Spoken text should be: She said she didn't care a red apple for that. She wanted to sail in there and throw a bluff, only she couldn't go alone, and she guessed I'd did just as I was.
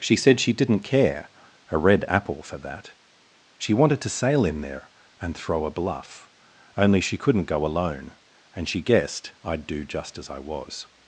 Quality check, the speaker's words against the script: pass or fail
fail